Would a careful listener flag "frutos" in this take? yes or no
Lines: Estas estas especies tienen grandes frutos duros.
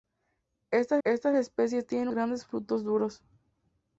no